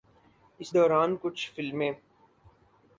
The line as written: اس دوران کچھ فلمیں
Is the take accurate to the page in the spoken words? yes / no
yes